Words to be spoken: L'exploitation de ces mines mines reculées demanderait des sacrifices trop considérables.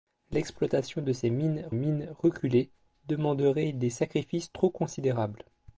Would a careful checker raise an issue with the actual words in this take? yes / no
no